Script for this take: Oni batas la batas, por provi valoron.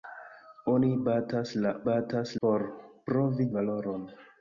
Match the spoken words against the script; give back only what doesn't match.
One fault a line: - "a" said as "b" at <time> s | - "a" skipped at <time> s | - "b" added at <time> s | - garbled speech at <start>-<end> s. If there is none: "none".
none